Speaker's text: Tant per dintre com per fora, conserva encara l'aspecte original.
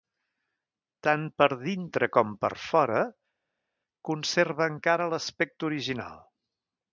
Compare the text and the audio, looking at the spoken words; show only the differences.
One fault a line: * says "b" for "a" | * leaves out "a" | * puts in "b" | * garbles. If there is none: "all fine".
all fine